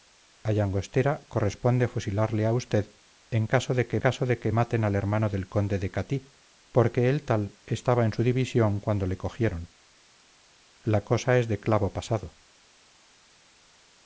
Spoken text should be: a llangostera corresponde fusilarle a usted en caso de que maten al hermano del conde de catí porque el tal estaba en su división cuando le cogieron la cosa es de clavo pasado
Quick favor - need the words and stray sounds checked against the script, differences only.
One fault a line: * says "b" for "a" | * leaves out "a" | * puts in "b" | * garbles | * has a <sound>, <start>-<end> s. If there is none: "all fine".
* puts in "caso de que"